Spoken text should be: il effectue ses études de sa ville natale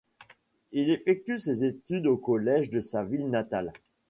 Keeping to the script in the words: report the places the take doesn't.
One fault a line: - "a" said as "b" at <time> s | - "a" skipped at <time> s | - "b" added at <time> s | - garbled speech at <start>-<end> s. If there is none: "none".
- "au collège" added at 2.1 s